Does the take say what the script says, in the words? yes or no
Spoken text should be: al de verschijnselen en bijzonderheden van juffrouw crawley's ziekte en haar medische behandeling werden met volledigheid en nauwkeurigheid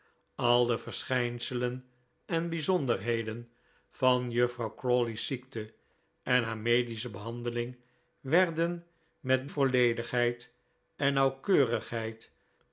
yes